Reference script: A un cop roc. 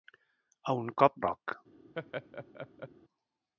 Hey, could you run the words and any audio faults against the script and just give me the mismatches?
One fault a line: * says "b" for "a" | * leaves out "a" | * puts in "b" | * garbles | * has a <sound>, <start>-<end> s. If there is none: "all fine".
* has a laugh, 1.9-2.9 s